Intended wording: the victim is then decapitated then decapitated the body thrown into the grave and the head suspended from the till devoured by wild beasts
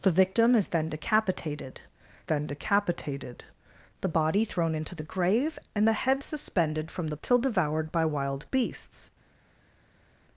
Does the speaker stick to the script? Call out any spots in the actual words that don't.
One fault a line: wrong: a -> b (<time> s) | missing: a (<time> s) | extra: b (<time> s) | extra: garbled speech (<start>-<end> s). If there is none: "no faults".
no faults